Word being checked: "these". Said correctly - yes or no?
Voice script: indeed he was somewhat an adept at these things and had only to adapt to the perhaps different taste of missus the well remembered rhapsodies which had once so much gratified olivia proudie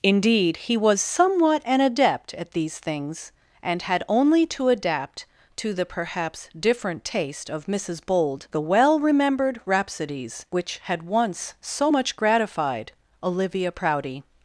yes